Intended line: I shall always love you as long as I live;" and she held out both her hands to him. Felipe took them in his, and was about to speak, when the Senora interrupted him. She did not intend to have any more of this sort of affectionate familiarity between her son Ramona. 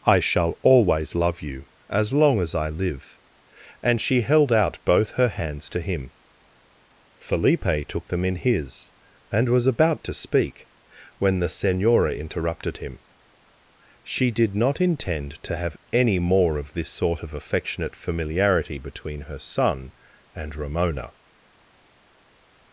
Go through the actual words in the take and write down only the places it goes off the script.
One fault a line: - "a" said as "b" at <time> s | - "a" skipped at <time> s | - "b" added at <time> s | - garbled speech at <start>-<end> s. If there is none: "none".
- "and" added at 20.3 s